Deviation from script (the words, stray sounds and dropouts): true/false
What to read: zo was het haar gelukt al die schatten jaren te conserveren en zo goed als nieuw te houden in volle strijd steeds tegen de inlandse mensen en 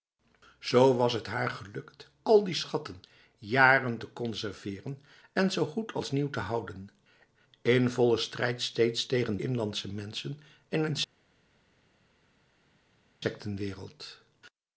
true